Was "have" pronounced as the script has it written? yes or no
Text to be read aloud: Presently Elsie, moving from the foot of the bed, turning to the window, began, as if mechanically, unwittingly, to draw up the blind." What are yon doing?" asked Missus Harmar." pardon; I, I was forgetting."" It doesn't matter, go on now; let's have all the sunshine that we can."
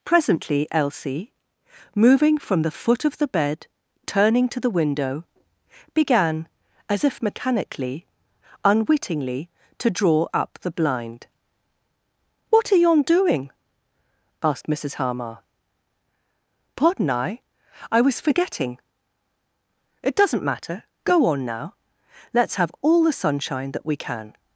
yes